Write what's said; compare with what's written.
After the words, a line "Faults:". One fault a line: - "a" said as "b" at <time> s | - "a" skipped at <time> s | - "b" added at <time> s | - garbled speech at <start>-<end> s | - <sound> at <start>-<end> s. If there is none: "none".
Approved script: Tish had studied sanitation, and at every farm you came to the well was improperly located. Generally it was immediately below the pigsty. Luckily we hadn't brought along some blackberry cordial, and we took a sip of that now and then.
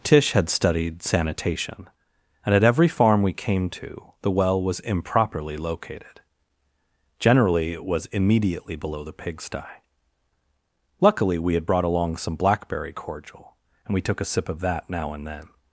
Tish had studied sanitation, and at every farm we came to the well was improperly located. Generally it was immediately below the pigsty. Luckily we had brought along some blackberry cordial, and we took a sip of that now and then.
Faults:
- "you" said as "we" at 3.2 s
- "hadn't" said as "had" at 11.5 s